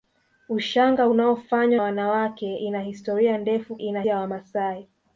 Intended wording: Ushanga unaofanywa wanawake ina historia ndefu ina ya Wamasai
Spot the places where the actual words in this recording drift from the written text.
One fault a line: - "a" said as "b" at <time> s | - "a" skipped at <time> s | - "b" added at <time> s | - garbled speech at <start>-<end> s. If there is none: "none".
none